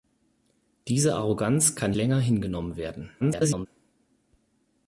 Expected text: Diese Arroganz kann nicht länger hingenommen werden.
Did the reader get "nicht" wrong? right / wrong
wrong